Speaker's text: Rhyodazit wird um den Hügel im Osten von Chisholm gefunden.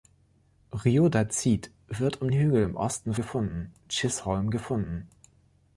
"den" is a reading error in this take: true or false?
true